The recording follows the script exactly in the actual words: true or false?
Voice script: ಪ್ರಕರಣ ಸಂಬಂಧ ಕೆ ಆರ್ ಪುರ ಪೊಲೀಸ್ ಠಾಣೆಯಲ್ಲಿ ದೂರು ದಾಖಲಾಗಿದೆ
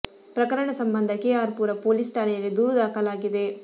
true